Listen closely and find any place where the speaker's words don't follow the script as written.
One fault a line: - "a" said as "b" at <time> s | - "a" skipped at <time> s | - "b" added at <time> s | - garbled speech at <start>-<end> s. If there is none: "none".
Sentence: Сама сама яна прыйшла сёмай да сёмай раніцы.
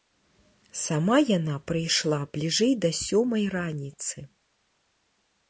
- "сама" skipped at 1.2 s
- "сёмай" said as "бліжэй" at 2.4 s